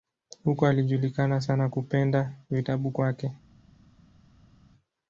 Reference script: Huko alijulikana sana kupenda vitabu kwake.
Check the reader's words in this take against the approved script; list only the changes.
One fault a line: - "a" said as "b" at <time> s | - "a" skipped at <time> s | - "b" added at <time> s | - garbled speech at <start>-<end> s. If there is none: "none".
none